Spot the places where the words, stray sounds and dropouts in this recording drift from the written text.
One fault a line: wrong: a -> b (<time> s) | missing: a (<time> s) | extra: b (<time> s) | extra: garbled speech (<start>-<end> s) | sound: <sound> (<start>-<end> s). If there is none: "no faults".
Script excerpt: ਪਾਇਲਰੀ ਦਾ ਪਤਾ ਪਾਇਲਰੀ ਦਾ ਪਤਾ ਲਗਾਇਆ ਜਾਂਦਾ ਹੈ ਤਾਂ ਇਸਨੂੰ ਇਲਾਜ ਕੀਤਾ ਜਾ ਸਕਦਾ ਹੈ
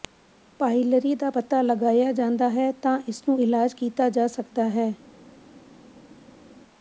missing: ਪਾਇਲਰੀ ਦਾ ਪਤਾ (1.6 s)